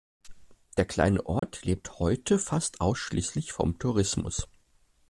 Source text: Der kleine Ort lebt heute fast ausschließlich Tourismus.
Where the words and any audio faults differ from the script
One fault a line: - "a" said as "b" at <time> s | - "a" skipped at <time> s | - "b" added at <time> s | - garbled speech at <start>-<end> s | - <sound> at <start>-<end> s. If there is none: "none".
- dropout at 1.4-1.4 s
- "vom" added at 3.5 s